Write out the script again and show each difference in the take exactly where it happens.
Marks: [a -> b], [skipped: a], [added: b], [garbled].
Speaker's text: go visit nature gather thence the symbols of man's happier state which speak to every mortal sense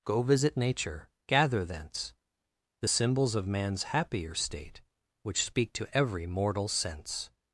go visit nature gather thence the symbols of man's happier state which speak to every mortal sense